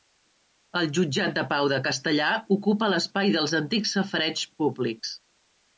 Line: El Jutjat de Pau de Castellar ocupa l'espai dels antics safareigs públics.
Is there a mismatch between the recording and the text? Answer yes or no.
no